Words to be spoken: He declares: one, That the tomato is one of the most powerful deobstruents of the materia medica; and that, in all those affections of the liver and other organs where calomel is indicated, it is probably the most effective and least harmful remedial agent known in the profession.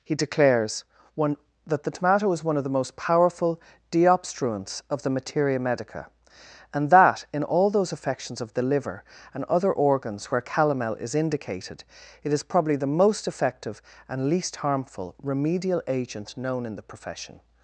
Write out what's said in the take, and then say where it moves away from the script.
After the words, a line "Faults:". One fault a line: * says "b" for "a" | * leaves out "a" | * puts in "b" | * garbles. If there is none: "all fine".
He declares: one, That the tomato is one of the most powerful deobstruents of the materia medica; and that, in all those affections of the liver and other organs where calomel is indicated, it is probably the most effective and least harmful remedial agent known in the profession.
Faults:
all fine